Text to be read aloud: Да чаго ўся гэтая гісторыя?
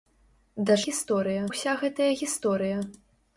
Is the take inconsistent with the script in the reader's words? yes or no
yes